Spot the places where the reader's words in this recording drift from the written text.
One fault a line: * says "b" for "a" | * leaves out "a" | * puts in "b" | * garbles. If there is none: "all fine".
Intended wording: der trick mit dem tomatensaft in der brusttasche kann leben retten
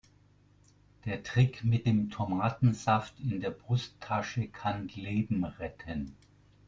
all fine